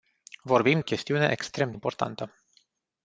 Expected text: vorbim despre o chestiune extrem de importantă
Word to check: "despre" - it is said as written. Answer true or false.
false